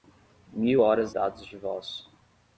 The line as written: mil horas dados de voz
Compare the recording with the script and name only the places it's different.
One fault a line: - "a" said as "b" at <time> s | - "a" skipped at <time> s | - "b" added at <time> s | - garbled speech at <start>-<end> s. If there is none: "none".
none